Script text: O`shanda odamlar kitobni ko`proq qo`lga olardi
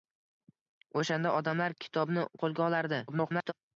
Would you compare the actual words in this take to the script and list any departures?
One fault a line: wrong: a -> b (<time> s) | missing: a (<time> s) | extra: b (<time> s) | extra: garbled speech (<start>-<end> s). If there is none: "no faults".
missing: ko`proq (2.2 s)
extra: garbled speech (3.1-3.5 s)